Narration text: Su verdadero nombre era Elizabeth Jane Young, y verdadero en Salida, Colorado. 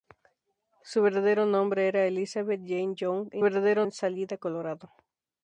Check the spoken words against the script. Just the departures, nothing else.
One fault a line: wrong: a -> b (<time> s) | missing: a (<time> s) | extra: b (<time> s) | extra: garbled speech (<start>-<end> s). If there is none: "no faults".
no faults